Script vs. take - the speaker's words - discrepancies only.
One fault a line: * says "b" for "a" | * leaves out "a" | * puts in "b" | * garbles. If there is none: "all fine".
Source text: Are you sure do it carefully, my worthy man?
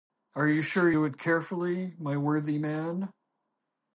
all fine